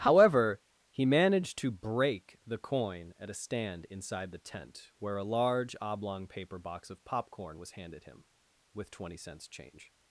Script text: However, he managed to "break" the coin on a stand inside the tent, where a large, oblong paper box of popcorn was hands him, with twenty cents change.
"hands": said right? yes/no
no